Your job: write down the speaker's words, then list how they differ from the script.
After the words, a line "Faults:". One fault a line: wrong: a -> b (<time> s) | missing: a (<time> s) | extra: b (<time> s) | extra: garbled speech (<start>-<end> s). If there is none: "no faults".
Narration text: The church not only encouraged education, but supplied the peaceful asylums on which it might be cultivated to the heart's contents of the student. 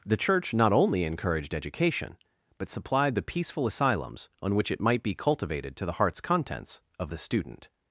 The church not only encouraged education, but supplied the peaceful asylums on which it might be cultivated to the heart's contents of the student.
Faults:
no faults